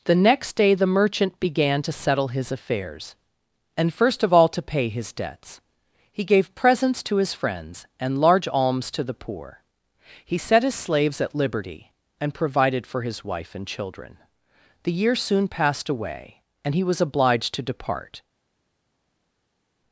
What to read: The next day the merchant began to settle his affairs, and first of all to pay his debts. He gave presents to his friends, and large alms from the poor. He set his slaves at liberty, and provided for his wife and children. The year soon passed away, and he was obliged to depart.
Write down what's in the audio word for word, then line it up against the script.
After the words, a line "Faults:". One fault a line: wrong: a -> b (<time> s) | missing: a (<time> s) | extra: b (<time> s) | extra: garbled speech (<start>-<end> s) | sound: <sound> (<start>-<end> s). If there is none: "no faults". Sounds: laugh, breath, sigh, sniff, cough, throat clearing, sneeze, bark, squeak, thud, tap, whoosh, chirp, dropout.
The next day the merchant began to settle his affairs, and first of all to pay his debts. He gave presents to his friends, and large alms to the poor. He set his slaves at liberty, and provided for his wife and children. The year soon passed away, and he was obliged to depart.
Faults:
wrong: from -> to (8.9 s)